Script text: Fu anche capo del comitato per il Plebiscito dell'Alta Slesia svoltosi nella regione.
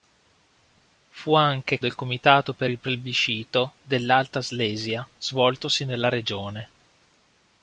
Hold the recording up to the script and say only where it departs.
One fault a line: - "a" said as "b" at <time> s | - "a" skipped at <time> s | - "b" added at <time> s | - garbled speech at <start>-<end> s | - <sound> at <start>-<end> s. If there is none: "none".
- "capo" skipped at 1.8 s